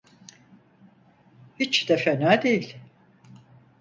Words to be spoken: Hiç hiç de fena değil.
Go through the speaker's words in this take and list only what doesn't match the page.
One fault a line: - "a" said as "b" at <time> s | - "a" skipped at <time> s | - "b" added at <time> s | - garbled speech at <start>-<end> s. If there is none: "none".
- "hiç" skipped at 1.9 s